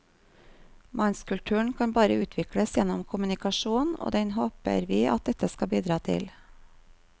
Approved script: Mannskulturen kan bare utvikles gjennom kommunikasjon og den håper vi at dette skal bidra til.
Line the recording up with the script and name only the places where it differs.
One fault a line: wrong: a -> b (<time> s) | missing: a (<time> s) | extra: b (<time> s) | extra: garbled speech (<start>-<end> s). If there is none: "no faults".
no faults